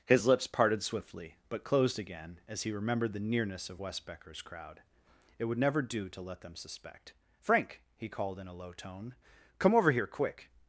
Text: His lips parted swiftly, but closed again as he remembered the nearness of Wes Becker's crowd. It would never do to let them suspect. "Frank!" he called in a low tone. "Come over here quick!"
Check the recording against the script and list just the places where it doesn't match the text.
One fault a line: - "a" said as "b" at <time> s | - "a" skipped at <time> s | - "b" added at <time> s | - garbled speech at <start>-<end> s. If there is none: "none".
none